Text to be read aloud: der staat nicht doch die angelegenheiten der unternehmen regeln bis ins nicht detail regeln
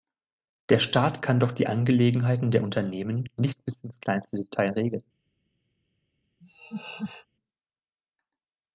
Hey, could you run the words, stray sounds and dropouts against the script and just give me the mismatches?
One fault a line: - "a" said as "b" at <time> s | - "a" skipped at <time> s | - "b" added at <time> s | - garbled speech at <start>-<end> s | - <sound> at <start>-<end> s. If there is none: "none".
- "nicht" said as "kann" at 1.2 s
- "regeln" said as "nicht" at 3.4 s
- "nicht" said as "kleinste" at 4.0 s
- laugh at 6.4-7.3 s